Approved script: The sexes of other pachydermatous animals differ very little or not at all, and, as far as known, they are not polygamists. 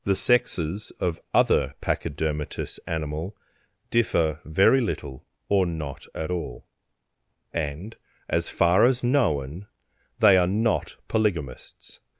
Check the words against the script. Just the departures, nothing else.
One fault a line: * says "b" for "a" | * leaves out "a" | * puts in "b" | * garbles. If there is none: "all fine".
* says "animal" for "animals"